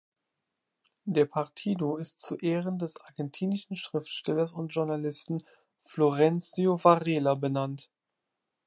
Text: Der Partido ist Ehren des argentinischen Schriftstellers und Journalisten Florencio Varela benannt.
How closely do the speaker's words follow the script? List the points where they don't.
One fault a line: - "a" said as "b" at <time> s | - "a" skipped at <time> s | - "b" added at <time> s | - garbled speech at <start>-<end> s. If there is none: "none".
- "zu" added at 2.2 s